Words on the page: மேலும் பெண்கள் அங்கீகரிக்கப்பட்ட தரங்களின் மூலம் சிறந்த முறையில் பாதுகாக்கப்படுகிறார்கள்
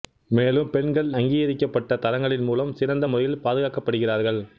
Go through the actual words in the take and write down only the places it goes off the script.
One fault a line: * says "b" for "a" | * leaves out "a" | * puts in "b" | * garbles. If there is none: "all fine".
all fine